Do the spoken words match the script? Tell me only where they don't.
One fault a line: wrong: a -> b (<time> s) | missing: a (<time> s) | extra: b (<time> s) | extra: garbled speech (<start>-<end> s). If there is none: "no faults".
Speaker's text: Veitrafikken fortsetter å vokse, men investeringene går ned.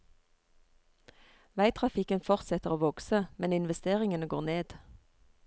no faults